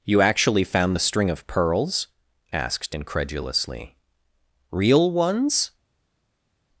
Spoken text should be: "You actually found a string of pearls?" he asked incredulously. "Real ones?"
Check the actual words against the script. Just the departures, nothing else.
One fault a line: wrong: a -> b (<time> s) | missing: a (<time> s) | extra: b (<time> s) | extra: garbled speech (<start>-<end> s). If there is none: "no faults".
wrong: a -> the (0.9 s)
missing: he (2.1 s)